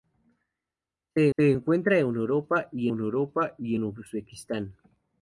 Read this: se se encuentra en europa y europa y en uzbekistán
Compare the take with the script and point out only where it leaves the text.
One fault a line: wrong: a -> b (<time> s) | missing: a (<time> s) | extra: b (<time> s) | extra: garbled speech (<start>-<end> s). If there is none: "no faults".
no faults